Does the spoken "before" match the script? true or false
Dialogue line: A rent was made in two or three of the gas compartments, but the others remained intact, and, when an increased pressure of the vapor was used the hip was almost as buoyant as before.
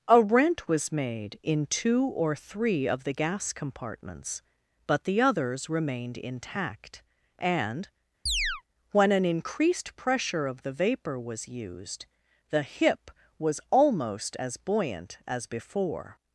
true